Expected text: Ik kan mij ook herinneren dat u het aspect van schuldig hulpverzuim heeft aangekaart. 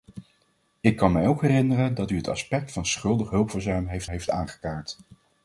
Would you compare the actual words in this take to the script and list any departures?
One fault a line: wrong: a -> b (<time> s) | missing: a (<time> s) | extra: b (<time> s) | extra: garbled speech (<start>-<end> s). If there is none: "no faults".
extra: heeft (4.1 s)